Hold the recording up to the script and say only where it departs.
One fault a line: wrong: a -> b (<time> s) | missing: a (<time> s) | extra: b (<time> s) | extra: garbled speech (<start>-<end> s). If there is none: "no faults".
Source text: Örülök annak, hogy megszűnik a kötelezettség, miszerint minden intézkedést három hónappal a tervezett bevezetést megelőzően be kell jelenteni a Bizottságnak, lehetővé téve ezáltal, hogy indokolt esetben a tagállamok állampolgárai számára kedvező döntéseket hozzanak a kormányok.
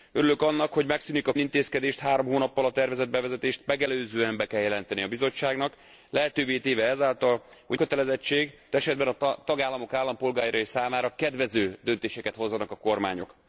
missing: kötelezettség miszerint minden (1.3 s)
wrong: indokolt -> kötelezettség (7.7 s)